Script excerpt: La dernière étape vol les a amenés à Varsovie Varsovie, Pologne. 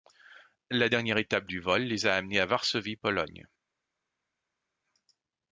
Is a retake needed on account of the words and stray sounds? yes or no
yes